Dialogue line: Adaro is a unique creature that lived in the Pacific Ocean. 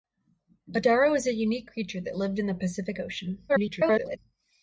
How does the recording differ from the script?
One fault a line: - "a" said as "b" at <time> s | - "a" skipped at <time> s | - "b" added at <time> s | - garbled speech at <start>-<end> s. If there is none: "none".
- garbled speech at 3.5-4.2 s